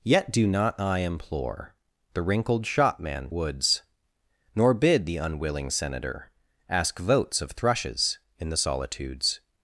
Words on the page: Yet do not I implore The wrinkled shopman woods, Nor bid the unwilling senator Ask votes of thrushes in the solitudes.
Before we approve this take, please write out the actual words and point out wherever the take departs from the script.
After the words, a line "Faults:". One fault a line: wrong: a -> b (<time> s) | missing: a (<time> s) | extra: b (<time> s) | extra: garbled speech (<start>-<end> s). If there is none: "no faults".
Yet do not I implore The wrinkled shopman woods, Nor bid the unwilling senator Ask votes of thrushes in the solitudes.
Faults:
no faults